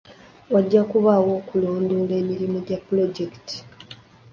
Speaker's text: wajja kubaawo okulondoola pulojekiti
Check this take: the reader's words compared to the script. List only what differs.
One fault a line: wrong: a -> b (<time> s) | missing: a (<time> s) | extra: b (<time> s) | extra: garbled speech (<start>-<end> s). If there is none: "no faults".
extra: emirimu gya (2.2 s)